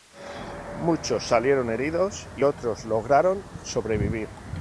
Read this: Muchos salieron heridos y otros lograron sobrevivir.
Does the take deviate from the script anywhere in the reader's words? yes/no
no